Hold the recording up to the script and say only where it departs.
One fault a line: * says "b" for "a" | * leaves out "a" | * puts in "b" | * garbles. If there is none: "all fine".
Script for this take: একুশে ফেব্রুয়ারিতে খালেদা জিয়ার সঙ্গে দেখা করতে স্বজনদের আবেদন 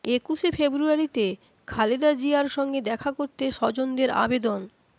all fine